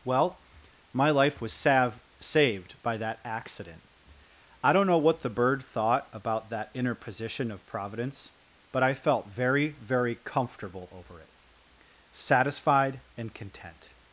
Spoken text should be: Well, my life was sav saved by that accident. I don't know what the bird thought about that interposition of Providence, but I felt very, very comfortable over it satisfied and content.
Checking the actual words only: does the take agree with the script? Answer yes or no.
yes